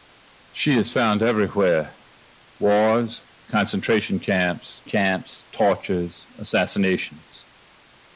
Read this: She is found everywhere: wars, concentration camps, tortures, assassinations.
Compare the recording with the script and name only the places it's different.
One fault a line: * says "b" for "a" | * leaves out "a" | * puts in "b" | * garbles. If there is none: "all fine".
* puts in "camps"